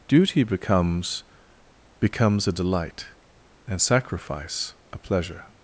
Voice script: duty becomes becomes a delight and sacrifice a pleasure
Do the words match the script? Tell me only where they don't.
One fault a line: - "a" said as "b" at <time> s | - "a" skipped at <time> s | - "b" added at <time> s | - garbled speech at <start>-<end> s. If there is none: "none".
none